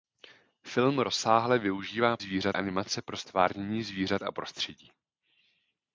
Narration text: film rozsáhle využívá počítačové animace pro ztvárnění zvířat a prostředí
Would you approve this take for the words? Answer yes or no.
no